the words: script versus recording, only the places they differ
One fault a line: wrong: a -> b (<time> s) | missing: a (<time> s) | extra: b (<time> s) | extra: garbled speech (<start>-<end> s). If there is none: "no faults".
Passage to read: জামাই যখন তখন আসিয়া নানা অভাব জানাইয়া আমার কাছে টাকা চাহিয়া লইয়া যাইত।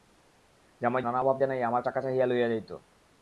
missing: যখন তখন আসিয়া (1.0 s)
missing: কাছে (1.8 s)